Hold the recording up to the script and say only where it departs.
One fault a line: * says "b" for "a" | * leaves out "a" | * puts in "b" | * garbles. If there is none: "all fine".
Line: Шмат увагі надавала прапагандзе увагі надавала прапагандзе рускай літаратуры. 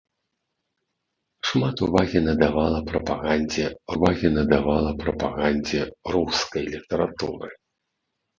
all fine